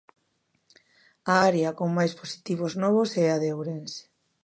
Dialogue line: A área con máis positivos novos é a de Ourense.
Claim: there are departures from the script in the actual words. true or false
false